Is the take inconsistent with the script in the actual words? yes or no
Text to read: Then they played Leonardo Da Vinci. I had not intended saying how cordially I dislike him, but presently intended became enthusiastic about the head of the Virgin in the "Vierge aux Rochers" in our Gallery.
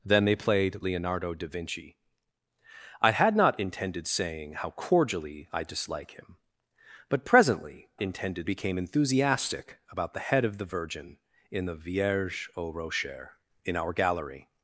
no